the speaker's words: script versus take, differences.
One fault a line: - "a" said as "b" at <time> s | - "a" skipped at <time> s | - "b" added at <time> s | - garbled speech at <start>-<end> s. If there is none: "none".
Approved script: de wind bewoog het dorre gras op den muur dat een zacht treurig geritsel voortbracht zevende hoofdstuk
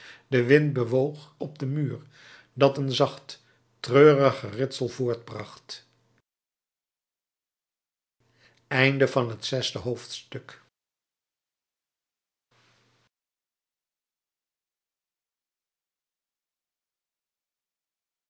- "het dorre gras" skipped at 1.4 s